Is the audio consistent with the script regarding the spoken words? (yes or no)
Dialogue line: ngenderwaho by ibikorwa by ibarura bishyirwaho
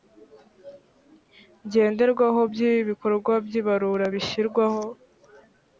yes